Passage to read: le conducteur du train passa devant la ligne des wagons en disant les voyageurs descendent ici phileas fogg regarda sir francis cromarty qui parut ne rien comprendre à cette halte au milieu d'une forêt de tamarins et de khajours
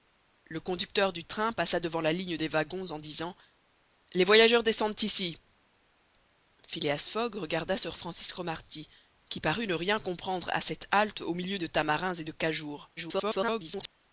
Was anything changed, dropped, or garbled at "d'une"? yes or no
yes